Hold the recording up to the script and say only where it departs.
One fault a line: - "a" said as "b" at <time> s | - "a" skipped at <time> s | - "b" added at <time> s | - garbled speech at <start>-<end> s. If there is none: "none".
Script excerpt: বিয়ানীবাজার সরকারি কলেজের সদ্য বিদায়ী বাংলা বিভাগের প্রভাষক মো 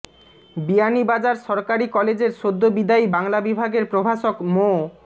none